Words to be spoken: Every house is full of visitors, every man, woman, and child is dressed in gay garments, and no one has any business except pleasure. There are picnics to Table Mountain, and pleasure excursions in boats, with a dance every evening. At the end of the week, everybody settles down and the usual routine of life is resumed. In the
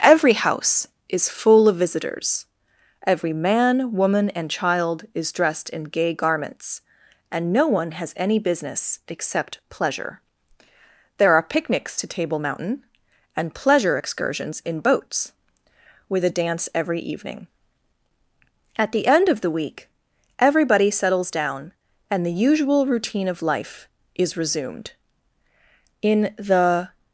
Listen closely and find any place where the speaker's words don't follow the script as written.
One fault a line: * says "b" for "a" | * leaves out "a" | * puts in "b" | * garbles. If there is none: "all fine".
all fine